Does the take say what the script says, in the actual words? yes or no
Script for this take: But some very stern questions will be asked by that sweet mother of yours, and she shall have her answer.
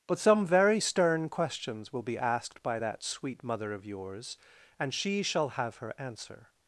yes